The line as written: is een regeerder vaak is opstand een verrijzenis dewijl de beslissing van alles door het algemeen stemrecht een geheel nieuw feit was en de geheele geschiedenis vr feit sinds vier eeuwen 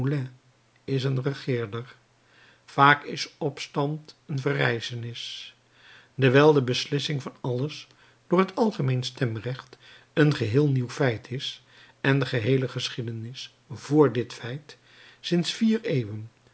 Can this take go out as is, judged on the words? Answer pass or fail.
fail